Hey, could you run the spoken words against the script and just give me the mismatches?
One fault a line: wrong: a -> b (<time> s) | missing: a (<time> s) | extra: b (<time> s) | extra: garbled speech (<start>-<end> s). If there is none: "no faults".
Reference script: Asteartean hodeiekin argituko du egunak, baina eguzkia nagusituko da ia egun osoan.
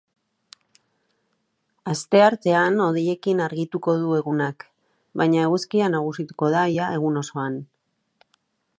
no faults